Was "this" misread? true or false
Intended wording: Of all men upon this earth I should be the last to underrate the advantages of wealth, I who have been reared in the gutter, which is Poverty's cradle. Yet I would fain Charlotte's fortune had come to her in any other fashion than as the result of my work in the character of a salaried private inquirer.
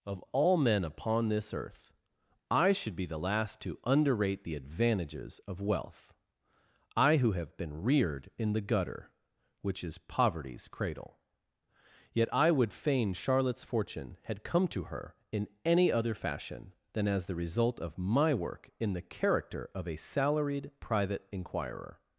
false